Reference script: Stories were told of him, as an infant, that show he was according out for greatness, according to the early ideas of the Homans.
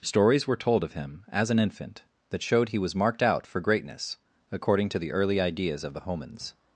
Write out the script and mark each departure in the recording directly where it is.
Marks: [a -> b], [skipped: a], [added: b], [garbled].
Stories were told of him, as an infant, that [show -> showed] he was [according -> marked] out for greatness, according to the early ideas of the Homans.